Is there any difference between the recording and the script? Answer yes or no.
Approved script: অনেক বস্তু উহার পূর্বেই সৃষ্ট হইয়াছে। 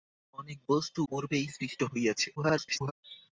yes